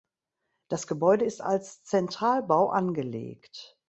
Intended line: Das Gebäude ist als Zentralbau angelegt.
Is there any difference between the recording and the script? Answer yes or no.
no